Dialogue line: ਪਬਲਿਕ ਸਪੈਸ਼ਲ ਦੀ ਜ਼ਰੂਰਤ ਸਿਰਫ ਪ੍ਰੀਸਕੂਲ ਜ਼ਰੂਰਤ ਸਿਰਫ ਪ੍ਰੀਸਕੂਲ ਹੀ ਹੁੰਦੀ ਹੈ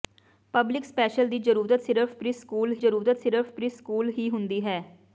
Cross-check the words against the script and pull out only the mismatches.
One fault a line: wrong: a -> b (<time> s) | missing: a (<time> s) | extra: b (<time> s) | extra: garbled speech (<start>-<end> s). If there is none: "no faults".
no faults